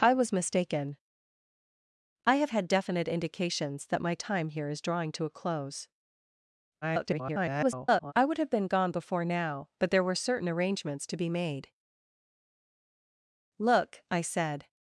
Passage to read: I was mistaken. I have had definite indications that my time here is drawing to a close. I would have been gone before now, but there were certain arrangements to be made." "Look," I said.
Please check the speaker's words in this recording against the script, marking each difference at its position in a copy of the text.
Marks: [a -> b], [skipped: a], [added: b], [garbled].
I was mistaken. I have had definite indications that my time here is drawing to a close. [garbled] I would have been gone before now, but there were certain arrangements to be made." "Look," I said.